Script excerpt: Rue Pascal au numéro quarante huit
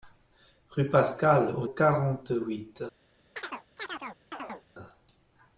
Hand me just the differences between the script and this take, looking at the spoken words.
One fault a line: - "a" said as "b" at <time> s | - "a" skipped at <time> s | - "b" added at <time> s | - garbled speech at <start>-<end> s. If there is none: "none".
- "numéro" skipped at 1.7 s